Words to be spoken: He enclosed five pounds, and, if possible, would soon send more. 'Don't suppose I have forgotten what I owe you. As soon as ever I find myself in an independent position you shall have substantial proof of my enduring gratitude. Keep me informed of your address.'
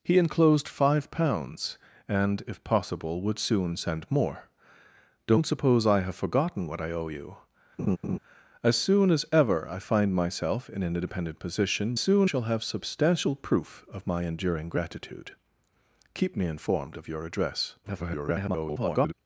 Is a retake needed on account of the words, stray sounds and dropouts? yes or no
yes